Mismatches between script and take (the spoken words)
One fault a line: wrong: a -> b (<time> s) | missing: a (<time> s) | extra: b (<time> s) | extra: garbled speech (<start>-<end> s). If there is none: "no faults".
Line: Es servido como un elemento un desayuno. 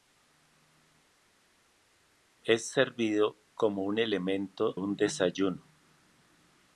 no faults